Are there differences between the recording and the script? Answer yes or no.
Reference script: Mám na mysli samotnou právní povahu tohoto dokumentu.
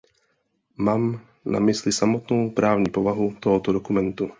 no